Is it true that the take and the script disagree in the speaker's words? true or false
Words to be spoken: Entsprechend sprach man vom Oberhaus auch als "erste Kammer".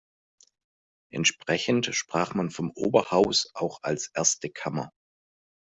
false